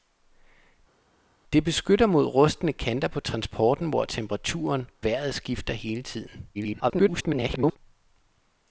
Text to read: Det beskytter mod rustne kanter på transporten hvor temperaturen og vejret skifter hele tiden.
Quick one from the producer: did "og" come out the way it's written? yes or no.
no